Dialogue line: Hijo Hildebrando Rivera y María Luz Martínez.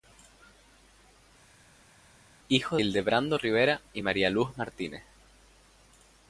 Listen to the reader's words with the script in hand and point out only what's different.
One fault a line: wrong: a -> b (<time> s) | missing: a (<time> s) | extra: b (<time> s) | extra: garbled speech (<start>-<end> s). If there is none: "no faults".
no faults